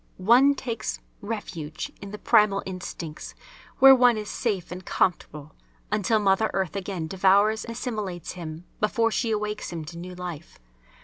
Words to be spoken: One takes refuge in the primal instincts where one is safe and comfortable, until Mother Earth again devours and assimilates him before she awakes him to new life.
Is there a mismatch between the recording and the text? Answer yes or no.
yes